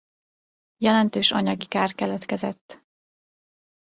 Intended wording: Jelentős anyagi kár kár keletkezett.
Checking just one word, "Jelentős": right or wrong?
right